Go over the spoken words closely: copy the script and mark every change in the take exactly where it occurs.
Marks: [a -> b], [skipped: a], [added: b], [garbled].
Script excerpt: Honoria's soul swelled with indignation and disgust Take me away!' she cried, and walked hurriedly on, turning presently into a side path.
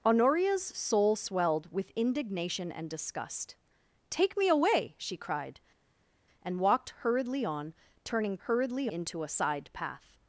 Honoria's soul swelled with indignation and disgust Take me away!' she cried, and walked hurriedly on, turning [presently -> hurriedly] into a side path.